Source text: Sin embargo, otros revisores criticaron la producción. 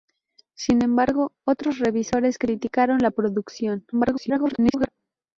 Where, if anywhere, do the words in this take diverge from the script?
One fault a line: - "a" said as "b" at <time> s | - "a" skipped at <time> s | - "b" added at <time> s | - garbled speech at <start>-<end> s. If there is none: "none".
- garbled speech at 3.9-4.9 s